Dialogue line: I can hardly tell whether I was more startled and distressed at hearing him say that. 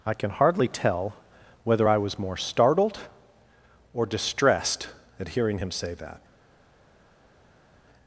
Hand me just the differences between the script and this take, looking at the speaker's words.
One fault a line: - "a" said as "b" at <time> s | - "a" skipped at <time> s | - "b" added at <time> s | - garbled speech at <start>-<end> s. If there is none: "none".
- "and" said as "or" at 3.9 s